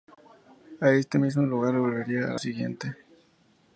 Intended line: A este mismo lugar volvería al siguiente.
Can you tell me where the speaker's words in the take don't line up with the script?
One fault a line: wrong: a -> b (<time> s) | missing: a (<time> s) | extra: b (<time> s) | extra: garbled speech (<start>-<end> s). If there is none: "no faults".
no faults